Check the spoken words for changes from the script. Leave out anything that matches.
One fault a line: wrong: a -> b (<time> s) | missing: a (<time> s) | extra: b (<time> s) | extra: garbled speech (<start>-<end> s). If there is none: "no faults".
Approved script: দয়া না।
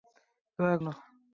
no faults